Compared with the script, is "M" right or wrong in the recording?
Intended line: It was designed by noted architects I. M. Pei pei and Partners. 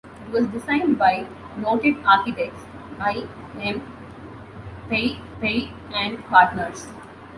right